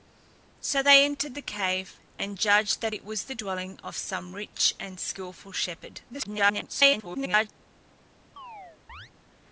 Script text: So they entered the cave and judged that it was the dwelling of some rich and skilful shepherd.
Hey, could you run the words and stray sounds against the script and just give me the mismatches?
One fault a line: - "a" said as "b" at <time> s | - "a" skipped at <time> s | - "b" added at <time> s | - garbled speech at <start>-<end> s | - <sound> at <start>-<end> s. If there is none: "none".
- garbled speech at 6.1-7.5 s
- chirp at 8.4-9.1 s